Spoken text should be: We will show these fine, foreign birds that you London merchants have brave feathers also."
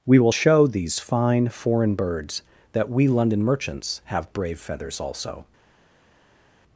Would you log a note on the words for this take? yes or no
yes